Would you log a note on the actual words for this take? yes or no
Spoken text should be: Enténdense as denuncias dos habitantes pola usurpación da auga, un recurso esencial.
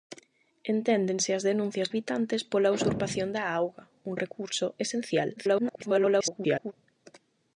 yes